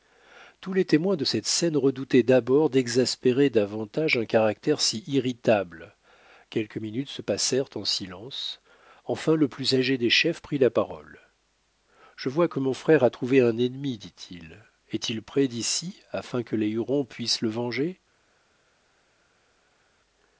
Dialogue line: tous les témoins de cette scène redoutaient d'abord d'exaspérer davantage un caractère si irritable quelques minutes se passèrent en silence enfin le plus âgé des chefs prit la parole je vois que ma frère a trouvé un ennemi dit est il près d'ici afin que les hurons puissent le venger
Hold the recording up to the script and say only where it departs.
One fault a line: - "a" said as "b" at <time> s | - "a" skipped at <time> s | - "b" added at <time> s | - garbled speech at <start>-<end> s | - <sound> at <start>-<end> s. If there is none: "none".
- "ma" said as "mon" at 12.6 s
- "il" added at 14.3 s